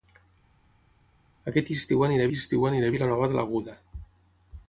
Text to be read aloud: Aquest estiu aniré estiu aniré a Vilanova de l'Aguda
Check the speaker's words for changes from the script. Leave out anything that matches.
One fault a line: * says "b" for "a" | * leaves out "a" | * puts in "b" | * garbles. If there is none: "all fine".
all fine